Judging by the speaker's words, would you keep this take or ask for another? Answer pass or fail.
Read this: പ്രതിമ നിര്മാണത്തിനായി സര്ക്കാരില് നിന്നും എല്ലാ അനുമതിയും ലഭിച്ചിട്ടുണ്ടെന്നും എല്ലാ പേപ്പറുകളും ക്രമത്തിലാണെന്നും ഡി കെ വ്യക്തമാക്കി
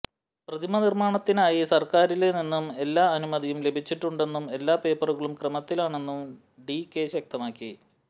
pass